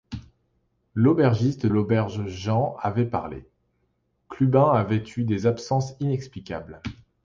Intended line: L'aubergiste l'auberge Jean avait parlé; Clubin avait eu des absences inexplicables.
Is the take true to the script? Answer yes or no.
yes